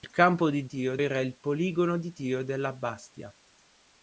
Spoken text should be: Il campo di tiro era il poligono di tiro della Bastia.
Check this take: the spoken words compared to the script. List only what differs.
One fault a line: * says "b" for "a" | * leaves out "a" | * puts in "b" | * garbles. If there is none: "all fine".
all fine